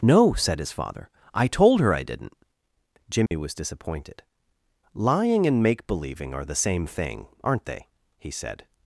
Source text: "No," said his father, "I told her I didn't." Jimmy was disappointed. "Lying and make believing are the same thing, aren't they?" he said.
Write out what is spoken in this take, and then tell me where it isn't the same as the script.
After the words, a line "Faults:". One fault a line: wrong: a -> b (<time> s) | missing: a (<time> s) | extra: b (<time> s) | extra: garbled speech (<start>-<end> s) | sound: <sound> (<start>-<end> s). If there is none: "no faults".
"No," said his father, "I told her I didn't." Jimmy was disappointed. "Lying and make believing are the same thing, aren't they?" he said.
Faults:
sound: dropout (3.3-3.3 s)